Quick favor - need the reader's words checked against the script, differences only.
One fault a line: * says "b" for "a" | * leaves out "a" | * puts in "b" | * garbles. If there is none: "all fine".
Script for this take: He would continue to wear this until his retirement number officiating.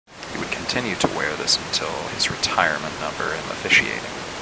all fine